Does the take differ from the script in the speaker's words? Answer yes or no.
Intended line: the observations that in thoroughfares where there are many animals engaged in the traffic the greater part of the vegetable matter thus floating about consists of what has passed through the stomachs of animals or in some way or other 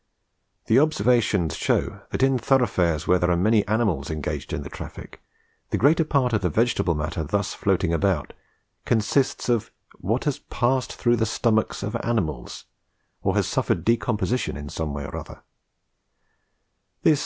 yes